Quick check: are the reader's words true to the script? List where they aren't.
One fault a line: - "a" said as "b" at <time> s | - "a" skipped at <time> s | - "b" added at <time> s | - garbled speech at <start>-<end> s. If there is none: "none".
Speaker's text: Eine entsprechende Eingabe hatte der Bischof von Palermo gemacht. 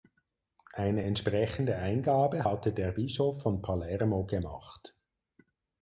none